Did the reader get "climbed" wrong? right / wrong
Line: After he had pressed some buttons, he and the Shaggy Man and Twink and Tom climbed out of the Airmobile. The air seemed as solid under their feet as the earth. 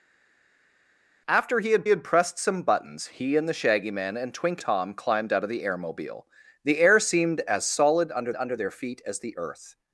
right